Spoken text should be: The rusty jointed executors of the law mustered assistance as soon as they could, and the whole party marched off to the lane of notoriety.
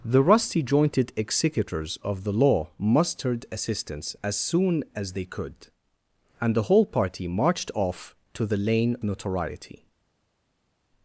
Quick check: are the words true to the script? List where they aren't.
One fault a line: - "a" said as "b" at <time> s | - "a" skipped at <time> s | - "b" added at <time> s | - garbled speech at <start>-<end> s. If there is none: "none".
- "of" skipped at 9.0 s